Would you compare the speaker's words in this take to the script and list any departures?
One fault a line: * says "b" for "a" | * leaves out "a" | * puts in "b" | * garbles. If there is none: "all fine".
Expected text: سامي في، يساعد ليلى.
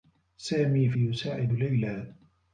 all fine